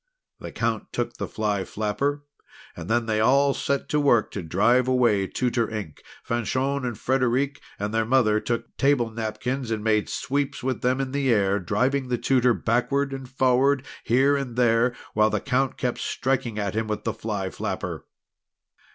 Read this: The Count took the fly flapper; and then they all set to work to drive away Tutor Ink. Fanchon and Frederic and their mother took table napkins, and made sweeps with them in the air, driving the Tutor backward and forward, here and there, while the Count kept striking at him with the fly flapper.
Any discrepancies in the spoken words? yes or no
no